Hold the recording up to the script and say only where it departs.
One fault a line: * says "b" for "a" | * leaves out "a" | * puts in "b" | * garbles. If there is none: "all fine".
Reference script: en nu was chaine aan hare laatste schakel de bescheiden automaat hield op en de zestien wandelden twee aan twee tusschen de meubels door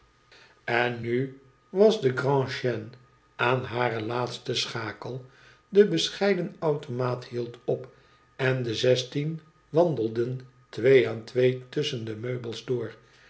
* puts in "de grand"